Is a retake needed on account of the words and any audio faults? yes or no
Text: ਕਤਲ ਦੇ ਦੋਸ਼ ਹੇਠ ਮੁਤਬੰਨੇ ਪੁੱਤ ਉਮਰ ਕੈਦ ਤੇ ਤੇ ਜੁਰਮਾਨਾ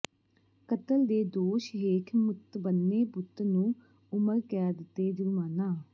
yes